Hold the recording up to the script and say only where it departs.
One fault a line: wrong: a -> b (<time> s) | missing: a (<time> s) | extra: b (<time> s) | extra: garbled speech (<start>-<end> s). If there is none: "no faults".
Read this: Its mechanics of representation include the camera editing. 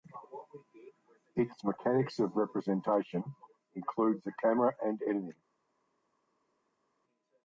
extra: and (4.8 s)